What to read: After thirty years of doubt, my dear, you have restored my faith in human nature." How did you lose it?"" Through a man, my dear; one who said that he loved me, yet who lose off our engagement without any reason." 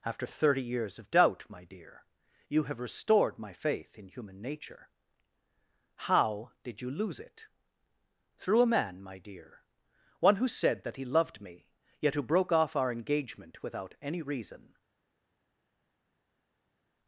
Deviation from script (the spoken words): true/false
true